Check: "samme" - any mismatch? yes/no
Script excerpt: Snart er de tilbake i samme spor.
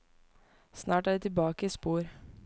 yes